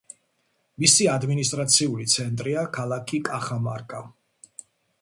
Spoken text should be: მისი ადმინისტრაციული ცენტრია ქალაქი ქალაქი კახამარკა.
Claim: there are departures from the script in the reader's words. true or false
true